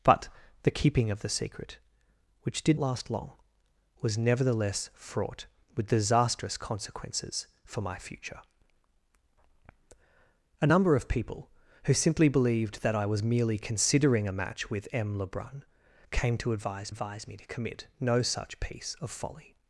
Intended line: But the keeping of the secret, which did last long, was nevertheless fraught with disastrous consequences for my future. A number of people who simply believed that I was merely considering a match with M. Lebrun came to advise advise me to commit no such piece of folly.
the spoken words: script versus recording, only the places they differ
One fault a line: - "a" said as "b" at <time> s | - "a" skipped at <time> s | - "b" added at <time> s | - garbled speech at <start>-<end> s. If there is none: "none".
none